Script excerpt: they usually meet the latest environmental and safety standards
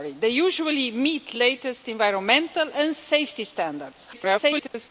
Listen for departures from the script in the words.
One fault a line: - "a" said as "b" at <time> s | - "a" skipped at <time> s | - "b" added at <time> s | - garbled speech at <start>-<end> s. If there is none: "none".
- garbled speech at 4.1-4.9 s